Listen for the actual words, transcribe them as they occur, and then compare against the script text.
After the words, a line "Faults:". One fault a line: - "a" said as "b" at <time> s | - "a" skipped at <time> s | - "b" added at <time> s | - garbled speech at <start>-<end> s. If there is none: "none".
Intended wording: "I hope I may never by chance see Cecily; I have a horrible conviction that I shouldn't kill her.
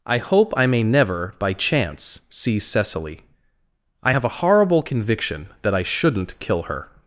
"I hope I may never by chance see Cecily; I have a horrible conviction that I shouldn't kill her.
Faults:
none